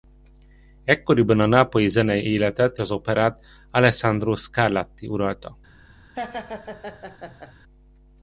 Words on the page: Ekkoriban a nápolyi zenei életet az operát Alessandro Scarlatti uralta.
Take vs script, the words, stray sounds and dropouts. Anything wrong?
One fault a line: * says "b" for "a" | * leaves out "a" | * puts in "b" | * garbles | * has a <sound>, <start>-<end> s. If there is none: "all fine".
* has a laugh, 6.1-7.5 s